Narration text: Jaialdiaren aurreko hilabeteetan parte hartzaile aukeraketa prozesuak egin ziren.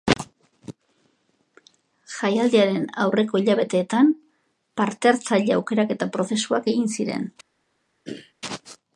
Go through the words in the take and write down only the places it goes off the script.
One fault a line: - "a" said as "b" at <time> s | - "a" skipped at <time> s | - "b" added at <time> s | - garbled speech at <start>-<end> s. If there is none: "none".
none